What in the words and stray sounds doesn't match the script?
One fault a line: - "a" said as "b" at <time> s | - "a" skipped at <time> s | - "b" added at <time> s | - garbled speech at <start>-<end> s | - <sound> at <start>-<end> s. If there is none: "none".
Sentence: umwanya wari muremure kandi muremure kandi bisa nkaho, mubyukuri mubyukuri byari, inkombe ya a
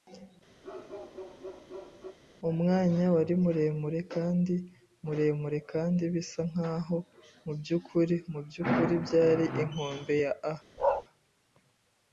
- bark at 0.6-2.2 s
- bark at 10.8-11.0 s